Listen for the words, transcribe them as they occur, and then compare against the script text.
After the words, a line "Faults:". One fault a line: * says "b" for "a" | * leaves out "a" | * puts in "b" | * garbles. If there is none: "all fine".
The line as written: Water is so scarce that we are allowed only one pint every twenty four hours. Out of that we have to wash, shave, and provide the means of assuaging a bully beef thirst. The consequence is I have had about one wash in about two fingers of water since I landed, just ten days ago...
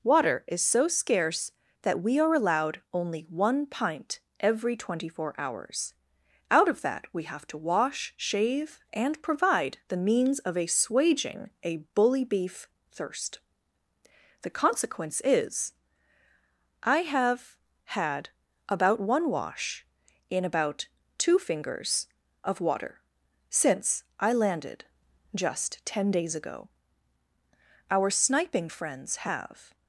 Water is so scarce that we are allowed only one pint every twenty four hours. Out of that we have to wash, shave, and provide the means of assuaging a bully beef thirst. The consequence is I have had about one wash in about two fingers of water since I landed, just ten days ago... Our sniping friends have
Faults:
* puts in "Our sniping friends have"